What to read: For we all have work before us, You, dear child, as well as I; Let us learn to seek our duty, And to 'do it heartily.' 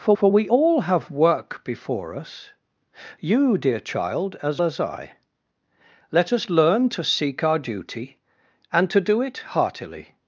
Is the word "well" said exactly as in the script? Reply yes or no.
no